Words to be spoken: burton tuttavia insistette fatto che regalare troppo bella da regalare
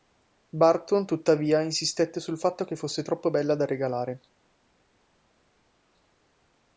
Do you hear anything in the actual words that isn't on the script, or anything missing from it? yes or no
yes